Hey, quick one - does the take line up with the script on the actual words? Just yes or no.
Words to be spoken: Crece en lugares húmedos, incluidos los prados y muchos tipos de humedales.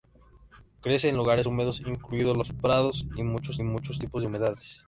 no